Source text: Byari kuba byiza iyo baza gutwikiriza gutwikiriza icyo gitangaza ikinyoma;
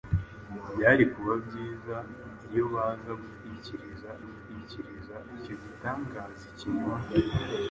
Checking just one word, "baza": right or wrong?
right